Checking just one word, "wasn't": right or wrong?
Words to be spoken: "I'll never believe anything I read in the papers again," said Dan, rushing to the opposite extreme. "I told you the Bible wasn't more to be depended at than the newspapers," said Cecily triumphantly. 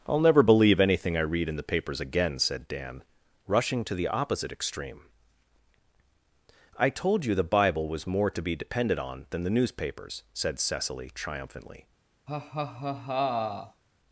wrong